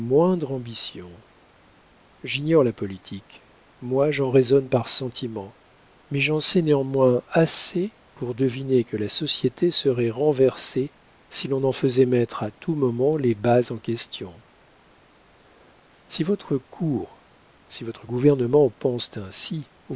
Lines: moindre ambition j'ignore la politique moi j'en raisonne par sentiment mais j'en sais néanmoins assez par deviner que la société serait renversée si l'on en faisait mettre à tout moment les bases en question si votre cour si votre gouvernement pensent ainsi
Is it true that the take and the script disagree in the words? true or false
true